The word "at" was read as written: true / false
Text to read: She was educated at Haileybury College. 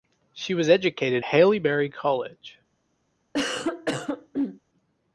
false